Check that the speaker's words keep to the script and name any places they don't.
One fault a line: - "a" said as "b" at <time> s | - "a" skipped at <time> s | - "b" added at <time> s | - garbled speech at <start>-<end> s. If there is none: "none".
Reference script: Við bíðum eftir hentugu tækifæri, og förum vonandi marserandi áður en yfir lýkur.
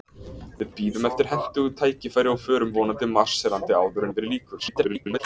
- "en" skipped at 4.1 s
- garbled speech at 4.6-5.2 s